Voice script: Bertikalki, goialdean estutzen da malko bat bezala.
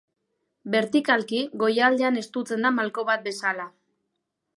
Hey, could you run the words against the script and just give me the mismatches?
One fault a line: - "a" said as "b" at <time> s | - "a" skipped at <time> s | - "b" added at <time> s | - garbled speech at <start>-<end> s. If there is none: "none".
none